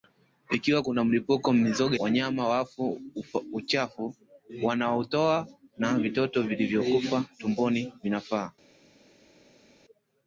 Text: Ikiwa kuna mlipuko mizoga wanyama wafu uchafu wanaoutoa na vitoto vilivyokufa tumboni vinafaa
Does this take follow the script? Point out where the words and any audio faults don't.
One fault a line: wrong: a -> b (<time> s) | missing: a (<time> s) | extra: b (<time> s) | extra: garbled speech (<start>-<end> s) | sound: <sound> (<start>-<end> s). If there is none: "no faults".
no faults